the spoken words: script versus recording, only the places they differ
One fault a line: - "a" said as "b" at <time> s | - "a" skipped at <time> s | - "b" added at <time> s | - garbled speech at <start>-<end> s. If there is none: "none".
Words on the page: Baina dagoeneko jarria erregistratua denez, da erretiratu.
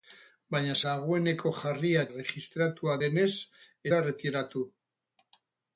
none